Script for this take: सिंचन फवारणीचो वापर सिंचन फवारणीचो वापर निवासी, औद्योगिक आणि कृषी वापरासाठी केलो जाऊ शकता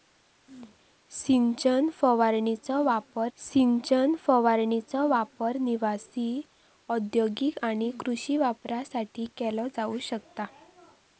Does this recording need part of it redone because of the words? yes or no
no